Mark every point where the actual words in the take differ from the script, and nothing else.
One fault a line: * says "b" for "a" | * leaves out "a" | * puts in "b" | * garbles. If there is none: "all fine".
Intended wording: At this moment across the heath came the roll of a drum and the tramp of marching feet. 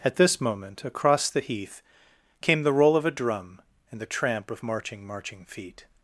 * puts in "marching"